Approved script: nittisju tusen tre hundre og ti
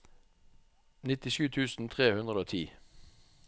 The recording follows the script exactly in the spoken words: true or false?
true